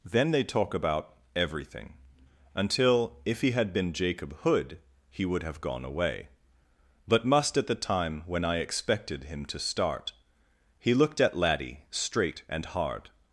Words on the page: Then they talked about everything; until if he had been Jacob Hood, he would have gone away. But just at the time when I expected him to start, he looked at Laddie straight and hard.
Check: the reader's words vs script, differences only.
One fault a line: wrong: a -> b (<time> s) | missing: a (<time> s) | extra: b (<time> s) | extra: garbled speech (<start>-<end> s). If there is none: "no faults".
wrong: talked -> talk (0.4 s)
wrong: just -> must (7.2 s)